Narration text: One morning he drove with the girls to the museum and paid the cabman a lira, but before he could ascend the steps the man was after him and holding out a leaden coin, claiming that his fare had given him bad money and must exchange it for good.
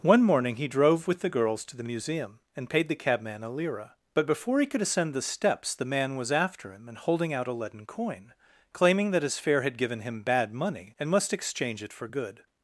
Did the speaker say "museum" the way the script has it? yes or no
yes